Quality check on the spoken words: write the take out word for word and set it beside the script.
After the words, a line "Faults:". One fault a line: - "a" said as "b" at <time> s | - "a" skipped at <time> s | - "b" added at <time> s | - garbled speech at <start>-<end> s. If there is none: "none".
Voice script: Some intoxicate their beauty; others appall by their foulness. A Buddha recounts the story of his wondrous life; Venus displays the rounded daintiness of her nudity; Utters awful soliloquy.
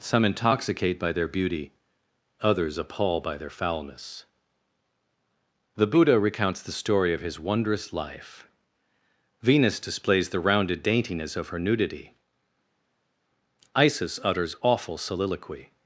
Some intoxicate by their beauty; others appall by their foulness. The Buddha recounts the story of his wondrous life; Venus displays the rounded daintiness of her nudity; Isis utters awful soliloquy.
Faults:
- "by" added at 1.0 s
- "A" said as "The" at 5.7 s
- "Isis" added at 13.8 s